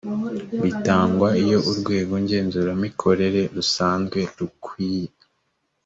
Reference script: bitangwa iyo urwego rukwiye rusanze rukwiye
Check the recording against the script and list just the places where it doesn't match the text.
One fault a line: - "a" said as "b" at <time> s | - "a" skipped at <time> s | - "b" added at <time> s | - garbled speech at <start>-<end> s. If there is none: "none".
- "rukwiye" said as "ngenzuramikorere" at 2.2 s